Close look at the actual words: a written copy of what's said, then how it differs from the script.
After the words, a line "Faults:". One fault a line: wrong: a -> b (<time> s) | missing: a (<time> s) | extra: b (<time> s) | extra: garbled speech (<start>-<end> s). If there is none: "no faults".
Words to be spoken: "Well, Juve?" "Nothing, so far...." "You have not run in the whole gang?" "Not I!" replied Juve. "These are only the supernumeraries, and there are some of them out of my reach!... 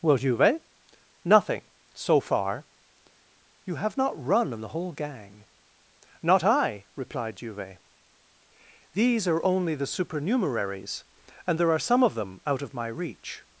"Well, Juve?" "Nothing, so far...." "You have not run in the whole gang?" "Not I!" replied Juve. "These are only the supernumeraries, and there are some of them out of my reach!...
Faults:
no faults